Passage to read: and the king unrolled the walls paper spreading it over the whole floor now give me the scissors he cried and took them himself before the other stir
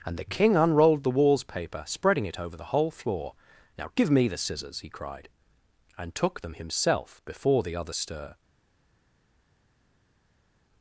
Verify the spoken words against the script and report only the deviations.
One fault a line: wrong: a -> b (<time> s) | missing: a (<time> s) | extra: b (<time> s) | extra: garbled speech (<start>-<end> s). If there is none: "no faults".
no faults